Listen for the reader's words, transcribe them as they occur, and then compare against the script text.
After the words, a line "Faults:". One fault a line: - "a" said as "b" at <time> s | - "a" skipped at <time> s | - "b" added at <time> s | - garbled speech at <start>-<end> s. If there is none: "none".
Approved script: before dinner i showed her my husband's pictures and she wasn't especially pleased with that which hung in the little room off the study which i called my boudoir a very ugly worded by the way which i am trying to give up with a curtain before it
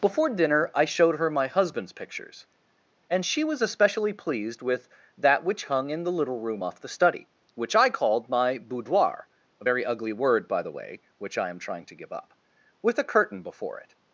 before dinner i showed her my husband's pictures and she was especially pleased with that which hung in the little room off the study which i called my boudoir a very ugly word by the way which i am trying to give up with a curtain before it
Faults:
- "wasn't" said as "was" at 3.4 s
- "worded" said as "word" at 10.1 s